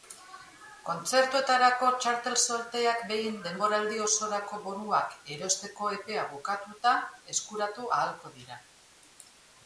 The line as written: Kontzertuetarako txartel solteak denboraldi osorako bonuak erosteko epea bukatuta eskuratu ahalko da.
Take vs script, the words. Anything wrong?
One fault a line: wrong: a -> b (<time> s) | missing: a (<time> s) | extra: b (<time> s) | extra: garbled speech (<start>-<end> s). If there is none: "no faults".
extra: behin (3.1 s)
wrong: da -> dira (8.4 s)